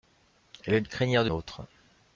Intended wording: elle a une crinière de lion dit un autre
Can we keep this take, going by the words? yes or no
no